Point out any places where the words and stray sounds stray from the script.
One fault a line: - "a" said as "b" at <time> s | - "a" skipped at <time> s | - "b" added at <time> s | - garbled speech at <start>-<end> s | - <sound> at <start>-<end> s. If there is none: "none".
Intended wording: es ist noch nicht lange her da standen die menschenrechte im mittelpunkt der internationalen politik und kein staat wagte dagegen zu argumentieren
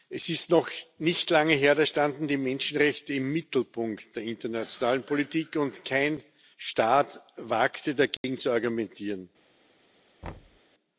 - dropout at 8.2-8.2 s
- thud at 10.2-10.6 s